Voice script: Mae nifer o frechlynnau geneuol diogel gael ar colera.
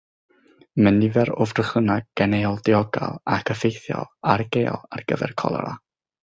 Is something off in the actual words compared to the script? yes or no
yes